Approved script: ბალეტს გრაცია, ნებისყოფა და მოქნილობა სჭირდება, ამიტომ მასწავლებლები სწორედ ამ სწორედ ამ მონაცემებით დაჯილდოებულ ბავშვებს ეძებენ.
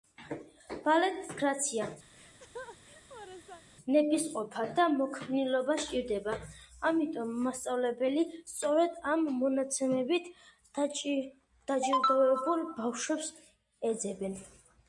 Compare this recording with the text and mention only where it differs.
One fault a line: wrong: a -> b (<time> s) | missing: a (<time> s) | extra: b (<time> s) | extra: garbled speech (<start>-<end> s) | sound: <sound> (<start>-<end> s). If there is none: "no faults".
sound: laugh (2.1-3.6 s)
missing: სწორედ ამ (9.3 s)